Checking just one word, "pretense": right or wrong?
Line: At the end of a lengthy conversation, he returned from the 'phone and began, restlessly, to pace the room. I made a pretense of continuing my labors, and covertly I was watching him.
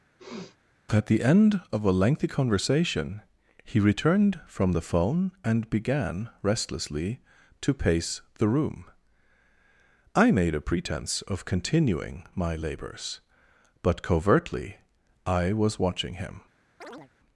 right